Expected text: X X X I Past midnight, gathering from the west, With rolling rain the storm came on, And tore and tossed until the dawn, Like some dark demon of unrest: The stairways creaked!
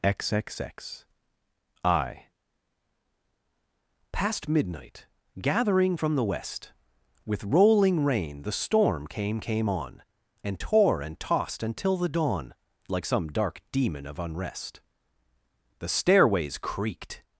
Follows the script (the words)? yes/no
no